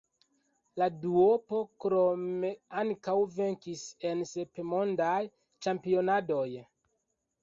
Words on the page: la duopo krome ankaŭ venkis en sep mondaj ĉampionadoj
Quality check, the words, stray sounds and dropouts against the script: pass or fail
pass